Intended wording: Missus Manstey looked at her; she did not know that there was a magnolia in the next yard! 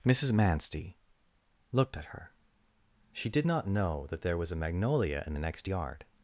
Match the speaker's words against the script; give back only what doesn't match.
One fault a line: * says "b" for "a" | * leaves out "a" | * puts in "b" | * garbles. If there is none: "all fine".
all fine